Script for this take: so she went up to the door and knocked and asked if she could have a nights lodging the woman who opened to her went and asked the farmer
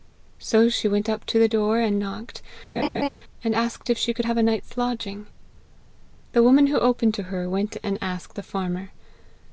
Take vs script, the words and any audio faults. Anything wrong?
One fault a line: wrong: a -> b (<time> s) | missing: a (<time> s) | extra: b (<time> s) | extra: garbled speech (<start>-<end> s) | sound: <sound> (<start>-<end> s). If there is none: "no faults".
sound: laugh (2.8-3.1 s)